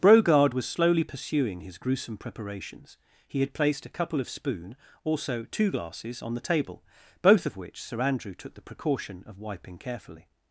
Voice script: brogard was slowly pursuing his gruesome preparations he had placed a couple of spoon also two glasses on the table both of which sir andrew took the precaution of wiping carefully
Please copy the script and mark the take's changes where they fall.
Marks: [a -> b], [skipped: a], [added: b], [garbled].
brogard was slowly pursuing his gruesome preparations he had placed a couple of spoon also two glasses on the table both of which sir andrew took the precaution of wiping carefully